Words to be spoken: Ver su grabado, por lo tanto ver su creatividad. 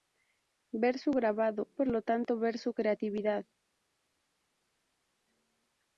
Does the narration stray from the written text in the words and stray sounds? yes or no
no